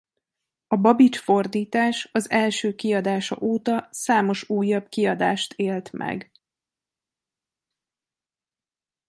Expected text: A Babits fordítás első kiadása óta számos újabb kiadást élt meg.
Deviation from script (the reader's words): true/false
true